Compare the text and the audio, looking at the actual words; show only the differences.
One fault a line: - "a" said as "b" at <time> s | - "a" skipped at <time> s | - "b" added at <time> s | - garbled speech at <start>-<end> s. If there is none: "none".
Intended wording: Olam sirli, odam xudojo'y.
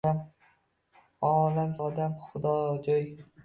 - "sirli" skipped at 1.8 s